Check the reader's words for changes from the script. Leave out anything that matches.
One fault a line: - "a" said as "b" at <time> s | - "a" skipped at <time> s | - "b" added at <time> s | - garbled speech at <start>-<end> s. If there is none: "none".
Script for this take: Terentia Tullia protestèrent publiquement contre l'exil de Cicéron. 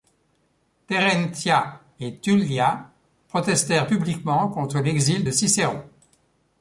- "et" added at 2.0 s